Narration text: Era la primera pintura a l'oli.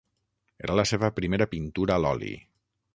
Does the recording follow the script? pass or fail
fail